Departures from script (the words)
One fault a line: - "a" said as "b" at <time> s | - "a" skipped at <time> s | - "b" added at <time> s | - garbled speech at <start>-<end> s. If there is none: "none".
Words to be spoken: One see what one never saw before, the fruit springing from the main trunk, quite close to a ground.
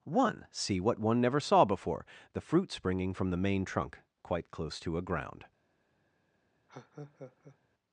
none